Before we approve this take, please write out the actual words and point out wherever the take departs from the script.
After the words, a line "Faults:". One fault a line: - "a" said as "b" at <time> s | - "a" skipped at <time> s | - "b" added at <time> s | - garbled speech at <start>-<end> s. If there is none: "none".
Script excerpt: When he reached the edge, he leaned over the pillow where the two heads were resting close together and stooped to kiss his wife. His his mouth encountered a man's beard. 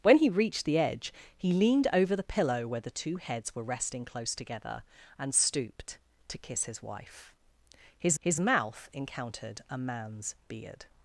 When he reached the edge, he leaned over the pillow where the two heads were resting close together and stooped to kiss his wife. His his mouth encountered a man's beard.
Faults:
none